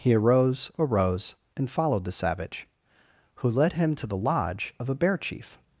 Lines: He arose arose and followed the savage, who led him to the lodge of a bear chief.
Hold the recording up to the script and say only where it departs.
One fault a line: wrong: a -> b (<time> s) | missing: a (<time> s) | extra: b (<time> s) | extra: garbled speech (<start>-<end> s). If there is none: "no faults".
no faults